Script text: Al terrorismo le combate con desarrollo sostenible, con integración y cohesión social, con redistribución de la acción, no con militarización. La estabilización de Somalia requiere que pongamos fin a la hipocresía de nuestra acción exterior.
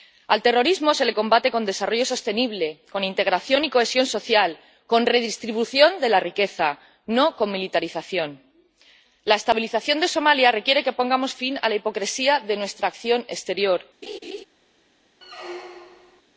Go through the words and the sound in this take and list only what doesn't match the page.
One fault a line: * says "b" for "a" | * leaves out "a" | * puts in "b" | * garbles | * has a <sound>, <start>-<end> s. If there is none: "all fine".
* puts in "se"
* says "riqueza" for "acción"
* has a laugh, 14.0-14.5 s
* has a squeak, 15.2-16.2 s